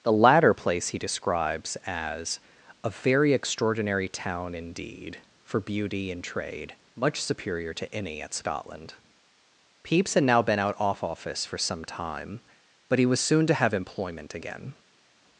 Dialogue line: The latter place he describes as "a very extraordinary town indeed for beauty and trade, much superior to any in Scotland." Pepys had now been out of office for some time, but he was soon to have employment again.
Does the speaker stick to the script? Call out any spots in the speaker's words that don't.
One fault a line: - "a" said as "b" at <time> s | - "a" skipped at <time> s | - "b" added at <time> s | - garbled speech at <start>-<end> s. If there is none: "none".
- "in" said as "at" at 8.2 s
- "of" said as "off" at 10.8 s